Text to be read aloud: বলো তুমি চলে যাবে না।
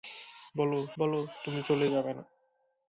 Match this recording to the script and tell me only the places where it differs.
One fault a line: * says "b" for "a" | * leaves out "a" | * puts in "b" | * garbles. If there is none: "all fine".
* puts in "বলো"